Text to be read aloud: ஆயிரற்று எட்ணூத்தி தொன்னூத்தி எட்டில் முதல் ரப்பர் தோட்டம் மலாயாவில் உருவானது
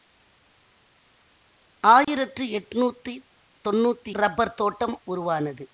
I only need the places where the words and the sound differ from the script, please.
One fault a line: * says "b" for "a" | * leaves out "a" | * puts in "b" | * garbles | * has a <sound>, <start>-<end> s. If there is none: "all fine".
* has a dropout, 2.0-2.1 s
* leaves out "எட்டில் முதல்"
* leaves out "மலாயாவில்"